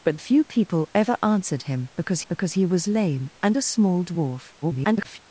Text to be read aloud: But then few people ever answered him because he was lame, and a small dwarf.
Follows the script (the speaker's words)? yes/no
no